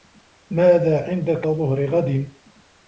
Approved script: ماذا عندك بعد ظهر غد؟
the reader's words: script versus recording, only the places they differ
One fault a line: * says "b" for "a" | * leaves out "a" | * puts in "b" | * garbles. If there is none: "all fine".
* leaves out "بعد"